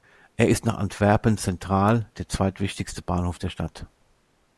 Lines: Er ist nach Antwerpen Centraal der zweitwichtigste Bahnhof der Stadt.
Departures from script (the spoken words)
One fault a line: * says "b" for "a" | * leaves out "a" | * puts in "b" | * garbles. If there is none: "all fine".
all fine